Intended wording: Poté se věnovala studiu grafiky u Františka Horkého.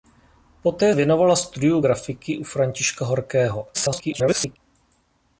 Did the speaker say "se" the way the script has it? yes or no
no